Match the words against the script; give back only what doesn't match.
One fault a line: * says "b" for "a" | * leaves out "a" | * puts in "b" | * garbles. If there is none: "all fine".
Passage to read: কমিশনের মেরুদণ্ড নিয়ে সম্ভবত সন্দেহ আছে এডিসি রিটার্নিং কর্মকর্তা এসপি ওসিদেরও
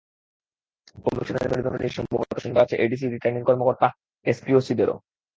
all fine